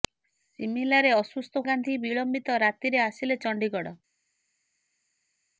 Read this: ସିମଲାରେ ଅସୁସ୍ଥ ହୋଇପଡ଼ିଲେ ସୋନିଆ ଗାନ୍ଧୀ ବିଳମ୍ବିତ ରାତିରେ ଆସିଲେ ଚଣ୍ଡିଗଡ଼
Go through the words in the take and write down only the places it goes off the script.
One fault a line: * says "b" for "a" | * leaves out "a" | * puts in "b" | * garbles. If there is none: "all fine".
* leaves out "ହୋଇପଡ଼ିଲେ ସୋନିଆ"